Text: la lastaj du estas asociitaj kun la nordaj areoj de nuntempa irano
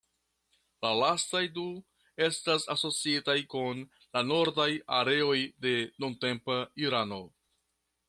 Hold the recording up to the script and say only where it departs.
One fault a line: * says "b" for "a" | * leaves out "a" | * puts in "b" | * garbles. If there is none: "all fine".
all fine